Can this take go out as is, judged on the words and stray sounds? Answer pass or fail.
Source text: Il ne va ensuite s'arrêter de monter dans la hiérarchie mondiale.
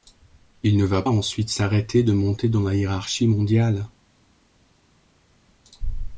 pass